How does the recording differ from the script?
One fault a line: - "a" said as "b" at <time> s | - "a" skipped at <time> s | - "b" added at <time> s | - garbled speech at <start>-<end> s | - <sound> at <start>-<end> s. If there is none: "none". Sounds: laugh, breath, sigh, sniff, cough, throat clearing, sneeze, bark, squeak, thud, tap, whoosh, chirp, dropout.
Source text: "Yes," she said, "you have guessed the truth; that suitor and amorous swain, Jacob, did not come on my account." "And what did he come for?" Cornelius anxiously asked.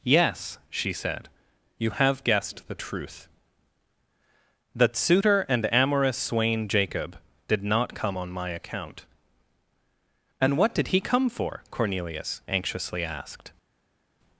none